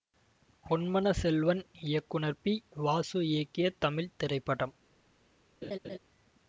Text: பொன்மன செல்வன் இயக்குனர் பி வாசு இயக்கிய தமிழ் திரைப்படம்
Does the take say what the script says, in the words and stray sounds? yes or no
no